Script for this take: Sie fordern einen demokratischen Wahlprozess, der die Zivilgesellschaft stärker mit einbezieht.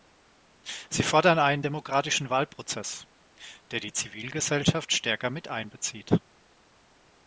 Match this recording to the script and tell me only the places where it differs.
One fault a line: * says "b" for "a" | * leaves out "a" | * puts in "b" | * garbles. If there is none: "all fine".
all fine